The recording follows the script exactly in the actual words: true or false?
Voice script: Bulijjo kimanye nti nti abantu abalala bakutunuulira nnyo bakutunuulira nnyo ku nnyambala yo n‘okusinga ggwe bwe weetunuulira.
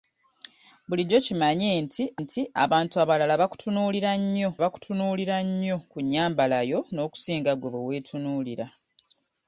true